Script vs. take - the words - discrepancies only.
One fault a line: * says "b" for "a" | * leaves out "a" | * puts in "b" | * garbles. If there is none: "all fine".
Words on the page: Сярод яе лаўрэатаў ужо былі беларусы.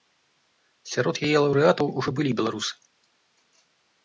all fine